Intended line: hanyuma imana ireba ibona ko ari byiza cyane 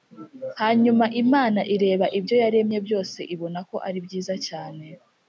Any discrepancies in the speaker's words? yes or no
yes